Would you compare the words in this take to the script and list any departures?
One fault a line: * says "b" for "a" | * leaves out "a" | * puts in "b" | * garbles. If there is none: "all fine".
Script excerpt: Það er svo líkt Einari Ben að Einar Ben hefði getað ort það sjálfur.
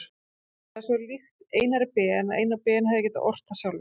all fine